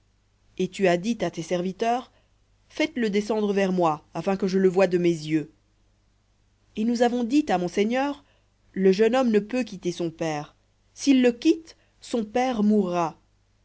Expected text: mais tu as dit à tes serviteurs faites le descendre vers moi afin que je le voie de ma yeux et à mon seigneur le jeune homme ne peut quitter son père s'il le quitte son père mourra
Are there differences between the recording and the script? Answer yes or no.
yes